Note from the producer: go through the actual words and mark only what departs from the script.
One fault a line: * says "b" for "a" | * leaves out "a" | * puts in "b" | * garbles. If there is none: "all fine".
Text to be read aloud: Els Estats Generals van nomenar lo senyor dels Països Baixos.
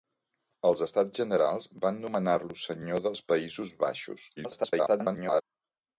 * garbles